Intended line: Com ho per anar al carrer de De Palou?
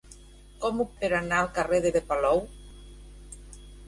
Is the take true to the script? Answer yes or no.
yes